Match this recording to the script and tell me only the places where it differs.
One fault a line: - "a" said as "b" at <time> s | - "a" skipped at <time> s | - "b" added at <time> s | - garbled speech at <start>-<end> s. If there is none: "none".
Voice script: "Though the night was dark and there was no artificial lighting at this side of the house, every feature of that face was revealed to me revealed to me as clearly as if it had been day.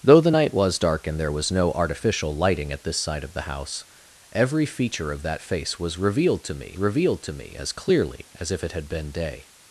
none